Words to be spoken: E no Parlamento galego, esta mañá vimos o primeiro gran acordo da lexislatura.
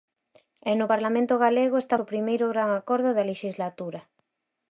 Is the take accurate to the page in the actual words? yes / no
no